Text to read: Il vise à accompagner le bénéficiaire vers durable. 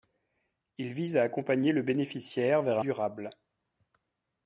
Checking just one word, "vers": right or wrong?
right